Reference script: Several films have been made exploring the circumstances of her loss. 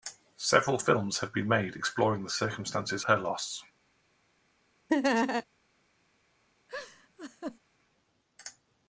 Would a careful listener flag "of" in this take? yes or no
yes